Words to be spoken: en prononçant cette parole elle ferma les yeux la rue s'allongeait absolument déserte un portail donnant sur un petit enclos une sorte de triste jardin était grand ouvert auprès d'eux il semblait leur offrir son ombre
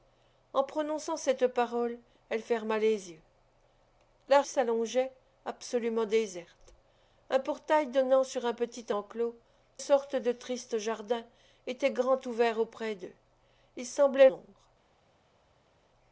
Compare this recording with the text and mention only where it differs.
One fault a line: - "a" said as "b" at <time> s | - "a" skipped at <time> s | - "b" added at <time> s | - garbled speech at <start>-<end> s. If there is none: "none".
- "rue" skipped at 4.4 s
- "une" skipped at 9.3 s
- "leur offrir son" skipped at 14.3 s